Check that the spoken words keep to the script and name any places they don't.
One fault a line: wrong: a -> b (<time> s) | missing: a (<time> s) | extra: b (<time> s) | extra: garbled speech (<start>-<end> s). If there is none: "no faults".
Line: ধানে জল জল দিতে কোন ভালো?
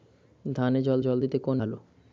no faults